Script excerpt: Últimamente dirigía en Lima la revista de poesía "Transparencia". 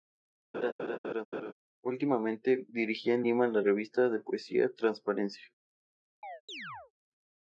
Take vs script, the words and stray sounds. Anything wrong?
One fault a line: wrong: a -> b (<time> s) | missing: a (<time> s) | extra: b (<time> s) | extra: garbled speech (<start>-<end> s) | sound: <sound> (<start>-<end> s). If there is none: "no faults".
sound: laugh (0.5-1.5 s)
sound: chirp (6.2-6.9 s)